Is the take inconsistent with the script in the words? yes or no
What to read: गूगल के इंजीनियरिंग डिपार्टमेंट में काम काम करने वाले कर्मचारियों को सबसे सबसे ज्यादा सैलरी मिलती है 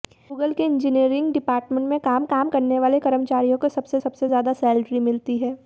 no